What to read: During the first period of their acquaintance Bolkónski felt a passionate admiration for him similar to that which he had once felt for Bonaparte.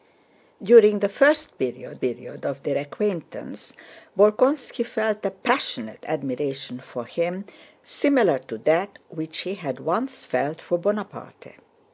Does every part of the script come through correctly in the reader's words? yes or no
no